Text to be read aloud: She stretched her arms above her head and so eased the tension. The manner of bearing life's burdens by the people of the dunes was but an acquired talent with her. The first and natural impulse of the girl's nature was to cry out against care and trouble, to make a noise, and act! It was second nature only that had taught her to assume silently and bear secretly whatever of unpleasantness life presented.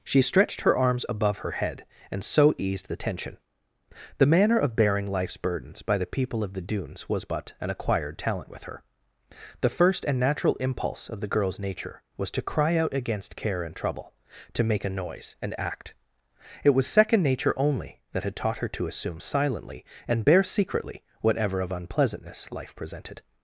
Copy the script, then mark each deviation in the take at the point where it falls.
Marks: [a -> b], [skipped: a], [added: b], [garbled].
She stretched her arms above her head and so eased the tension. The manner of bearing life's burdens by the people of the dunes was but an acquired talent with her. The first and natural impulse of the girl's nature was to cry out against care and trouble, to make a noise, and act! It was second nature only that had taught her to assume silently and bear secretly whatever of unpleasantness life presented.